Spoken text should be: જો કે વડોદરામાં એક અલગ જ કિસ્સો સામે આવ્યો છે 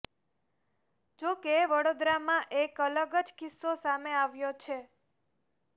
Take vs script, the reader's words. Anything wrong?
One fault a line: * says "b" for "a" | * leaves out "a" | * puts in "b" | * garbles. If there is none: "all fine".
all fine